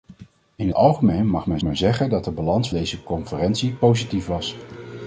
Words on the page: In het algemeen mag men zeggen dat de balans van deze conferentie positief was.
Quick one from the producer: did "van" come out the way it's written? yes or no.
no